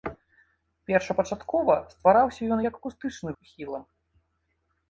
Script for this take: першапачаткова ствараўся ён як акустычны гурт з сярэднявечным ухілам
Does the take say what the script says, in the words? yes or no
no